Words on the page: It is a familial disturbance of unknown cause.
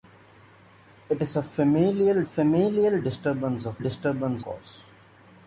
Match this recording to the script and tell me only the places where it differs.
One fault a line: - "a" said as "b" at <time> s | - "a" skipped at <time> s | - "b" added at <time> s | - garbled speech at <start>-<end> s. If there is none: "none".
- "familial" added at 2.2 s
- "unknown" said as "disturbance" at 3.8 s